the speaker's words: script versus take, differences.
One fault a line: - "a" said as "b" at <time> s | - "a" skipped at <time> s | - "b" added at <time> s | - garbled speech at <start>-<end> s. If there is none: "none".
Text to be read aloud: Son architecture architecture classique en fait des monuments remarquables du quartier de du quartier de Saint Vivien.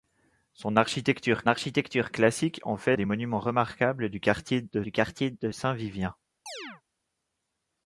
none